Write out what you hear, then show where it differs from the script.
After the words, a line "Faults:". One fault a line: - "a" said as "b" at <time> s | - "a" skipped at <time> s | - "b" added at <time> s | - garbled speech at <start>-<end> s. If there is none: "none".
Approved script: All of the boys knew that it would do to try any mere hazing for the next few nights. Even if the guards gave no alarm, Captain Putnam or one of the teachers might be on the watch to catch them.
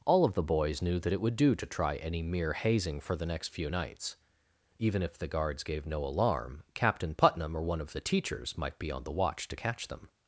All of the boys knew that it would do to try any mere hazing for the next few nights. Even if the guards gave no alarm, Captain Putnam or one of the teachers might be on the watch to catch them.
Faults:
none